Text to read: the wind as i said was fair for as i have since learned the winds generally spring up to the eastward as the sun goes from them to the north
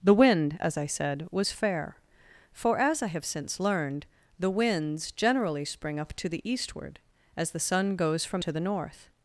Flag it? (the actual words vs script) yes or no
yes